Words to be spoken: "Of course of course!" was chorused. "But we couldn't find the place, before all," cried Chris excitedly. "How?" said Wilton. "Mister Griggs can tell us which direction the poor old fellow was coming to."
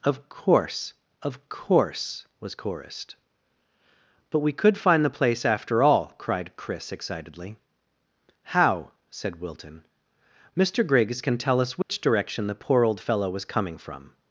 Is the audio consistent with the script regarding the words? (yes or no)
no